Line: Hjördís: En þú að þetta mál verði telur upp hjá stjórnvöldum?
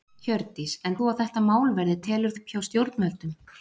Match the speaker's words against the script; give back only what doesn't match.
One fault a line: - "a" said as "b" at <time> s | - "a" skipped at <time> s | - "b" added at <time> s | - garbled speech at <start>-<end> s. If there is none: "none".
none